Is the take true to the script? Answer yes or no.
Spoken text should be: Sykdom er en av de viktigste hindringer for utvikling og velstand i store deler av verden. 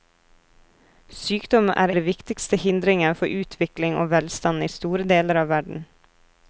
no